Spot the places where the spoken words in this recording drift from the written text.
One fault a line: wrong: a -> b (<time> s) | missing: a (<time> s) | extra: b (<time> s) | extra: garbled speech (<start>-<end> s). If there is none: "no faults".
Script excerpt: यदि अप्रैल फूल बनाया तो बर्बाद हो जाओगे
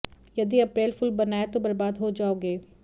no faults